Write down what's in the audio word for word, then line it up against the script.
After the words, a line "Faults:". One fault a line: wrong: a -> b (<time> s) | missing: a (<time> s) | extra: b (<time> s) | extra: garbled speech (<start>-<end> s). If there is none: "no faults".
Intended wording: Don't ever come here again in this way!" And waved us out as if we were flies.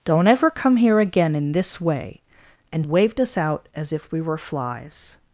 Don't ever come here again in this way!" And waved us out as if we were flies.
Faults:
no faults